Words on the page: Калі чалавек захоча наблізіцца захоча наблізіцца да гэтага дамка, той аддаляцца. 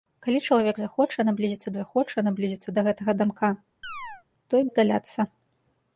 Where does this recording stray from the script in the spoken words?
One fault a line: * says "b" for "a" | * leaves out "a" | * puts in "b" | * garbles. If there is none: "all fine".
all fine